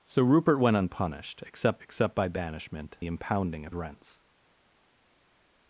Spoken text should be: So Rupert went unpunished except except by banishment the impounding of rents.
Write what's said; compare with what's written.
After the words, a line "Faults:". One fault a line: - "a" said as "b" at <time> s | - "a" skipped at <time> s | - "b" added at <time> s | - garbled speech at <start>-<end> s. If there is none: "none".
So Rupert went unpunished except except by banishment the impounding of rents.
Faults:
none